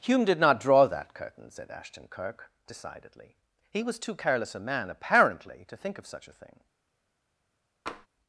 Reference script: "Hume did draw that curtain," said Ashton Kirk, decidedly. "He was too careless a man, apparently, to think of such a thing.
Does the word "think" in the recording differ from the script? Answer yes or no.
no